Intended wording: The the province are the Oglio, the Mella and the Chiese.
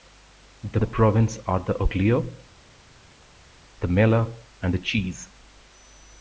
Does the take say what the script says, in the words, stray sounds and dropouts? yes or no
yes